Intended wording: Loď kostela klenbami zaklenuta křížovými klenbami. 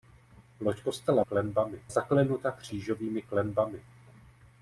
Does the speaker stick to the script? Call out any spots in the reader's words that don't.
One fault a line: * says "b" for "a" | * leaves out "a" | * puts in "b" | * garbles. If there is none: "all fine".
all fine